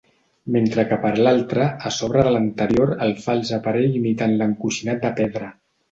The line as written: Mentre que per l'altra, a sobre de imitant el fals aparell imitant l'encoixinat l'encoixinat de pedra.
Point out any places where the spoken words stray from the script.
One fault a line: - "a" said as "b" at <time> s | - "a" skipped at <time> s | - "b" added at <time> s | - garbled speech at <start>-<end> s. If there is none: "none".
- "imitant" said as "l'anterior" at 2.4 s
- "l'encoixinat" skipped at 5.0 s